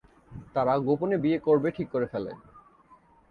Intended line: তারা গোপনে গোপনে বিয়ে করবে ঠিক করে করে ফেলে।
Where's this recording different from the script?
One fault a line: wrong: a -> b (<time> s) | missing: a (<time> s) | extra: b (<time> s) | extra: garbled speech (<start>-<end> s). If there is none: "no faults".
missing: গোপনে (1.2 s)
missing: করে (2.1 s)